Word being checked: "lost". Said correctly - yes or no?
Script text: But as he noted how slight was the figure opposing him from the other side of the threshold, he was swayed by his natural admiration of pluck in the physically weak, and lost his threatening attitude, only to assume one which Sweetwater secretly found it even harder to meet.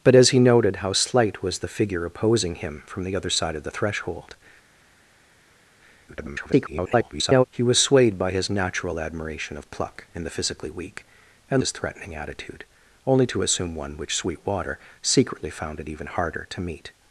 no